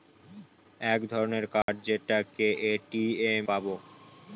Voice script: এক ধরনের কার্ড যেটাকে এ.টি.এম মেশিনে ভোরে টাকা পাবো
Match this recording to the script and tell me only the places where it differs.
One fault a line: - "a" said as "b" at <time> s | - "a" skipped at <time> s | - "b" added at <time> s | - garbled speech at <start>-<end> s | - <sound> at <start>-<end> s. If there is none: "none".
- dropout at 1.6-1.7 s
- "মেশিনে ভোরে টাকা" skipped at 3.4 s